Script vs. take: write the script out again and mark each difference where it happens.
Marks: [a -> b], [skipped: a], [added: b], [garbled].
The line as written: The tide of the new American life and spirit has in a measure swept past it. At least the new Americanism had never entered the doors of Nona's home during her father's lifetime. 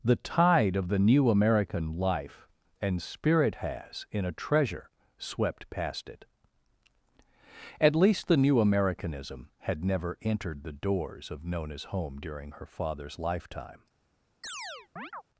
The tide of the new American life and spirit has in a [measure -> treasure] swept past it. At least the new Americanism had never entered the doors of Nona's home during her father's lifetime.